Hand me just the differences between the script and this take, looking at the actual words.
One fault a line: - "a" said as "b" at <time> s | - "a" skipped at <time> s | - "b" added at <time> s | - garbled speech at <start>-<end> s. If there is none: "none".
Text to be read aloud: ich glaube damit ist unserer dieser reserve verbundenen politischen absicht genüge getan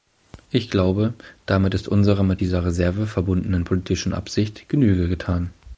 - "mit" added at 2.2 s